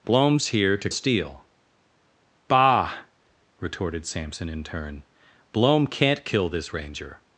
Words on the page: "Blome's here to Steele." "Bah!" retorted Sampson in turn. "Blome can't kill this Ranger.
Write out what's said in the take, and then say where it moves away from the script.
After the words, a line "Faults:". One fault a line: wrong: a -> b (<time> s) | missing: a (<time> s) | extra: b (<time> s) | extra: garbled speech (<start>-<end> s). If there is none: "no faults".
"Blome's here to Steele." "Bah!" retorted Sampson in turn. "Blome can't kill this Ranger.
Faults:
no faults